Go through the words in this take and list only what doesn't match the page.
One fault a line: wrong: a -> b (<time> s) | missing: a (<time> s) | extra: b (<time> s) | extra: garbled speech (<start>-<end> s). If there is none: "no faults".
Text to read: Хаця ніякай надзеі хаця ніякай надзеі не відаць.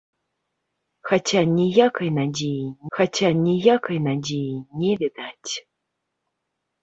no faults